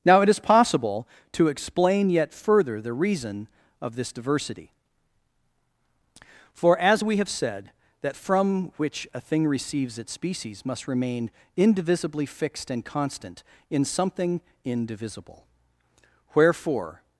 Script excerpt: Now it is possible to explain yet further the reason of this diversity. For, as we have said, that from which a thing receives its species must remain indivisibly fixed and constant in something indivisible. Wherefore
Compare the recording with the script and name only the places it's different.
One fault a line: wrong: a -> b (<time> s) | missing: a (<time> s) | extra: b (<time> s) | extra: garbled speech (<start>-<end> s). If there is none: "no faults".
no faults